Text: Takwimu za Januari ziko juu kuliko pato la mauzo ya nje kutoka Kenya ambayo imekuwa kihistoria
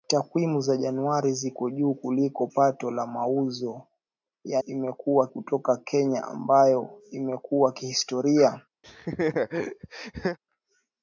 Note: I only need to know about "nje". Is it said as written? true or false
false